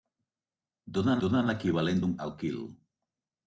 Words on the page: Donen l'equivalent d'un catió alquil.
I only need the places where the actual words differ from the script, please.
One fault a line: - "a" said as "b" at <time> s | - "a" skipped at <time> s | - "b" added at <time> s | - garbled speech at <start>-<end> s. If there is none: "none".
- "donen" added at 1.2 s
- "catió" skipped at 2.1 s